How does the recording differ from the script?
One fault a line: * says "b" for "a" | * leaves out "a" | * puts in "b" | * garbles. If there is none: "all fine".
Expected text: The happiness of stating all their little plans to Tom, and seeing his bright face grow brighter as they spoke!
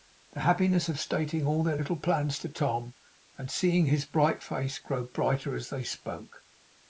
all fine